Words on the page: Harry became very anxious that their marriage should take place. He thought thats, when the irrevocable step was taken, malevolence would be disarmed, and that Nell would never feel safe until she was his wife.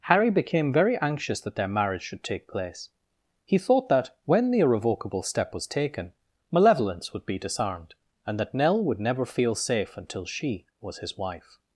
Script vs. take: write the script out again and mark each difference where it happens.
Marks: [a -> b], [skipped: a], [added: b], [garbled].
Harry became very anxious that their marriage should take place. He thought [thats, -> that] when the irrevocable step was taken, malevolence would be disarmed, and that Nell would never feel safe until she was his wife.